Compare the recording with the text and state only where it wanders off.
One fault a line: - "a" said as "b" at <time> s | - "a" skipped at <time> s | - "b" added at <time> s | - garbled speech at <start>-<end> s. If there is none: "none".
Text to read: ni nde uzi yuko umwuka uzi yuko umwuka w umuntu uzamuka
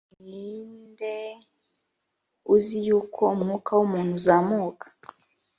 - "uzi yuko umwuka" skipped at 3.7 s